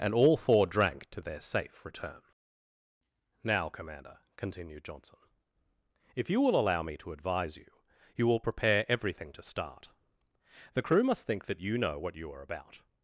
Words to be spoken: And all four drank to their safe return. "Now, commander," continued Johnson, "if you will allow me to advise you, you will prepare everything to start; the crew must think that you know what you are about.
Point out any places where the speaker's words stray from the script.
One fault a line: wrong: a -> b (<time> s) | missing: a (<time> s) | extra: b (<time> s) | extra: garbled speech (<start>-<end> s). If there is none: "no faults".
no faults